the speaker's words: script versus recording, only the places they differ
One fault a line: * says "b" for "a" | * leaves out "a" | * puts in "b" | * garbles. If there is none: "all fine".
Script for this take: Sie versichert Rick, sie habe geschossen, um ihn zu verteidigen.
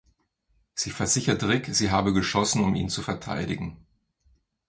all fine